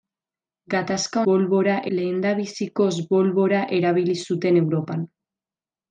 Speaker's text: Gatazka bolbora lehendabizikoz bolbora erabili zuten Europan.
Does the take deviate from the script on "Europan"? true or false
false